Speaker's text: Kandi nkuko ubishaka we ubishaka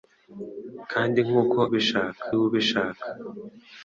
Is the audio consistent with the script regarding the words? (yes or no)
yes